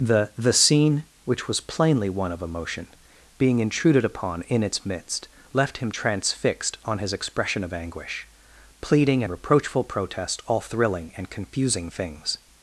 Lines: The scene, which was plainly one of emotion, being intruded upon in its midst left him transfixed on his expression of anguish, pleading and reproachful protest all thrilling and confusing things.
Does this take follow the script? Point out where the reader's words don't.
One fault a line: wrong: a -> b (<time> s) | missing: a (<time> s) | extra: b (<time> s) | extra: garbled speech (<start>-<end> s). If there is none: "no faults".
extra: the (0.3 s)